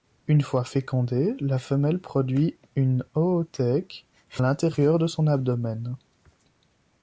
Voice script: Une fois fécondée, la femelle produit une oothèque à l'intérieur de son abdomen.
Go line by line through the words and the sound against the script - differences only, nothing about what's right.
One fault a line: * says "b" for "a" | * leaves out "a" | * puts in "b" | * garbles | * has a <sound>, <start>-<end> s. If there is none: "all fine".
* leaves out "à"